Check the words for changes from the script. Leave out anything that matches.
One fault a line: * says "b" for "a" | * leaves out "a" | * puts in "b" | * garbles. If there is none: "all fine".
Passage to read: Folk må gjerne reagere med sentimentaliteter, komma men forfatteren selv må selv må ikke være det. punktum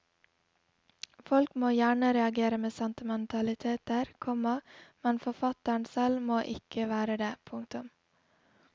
* leaves out "selv må"